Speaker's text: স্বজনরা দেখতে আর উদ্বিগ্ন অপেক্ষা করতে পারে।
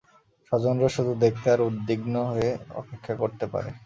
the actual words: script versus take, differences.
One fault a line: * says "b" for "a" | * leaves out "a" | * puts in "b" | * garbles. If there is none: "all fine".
* puts in "শুধু"
* puts in "হয়ে"